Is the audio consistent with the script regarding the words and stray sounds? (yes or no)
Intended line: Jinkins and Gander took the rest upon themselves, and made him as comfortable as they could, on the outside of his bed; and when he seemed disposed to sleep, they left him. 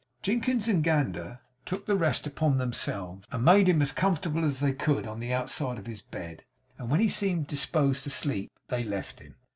yes